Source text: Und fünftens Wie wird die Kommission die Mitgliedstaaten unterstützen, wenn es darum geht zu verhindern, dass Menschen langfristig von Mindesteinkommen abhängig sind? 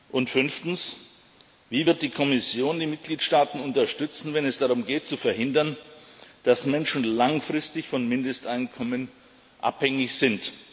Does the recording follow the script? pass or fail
pass